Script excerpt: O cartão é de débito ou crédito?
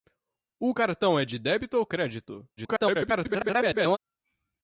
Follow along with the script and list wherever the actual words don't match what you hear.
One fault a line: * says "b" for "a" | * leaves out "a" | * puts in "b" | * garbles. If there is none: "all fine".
* garbles